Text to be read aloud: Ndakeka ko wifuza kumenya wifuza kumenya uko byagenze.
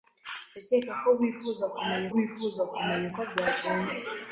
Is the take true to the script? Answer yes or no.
yes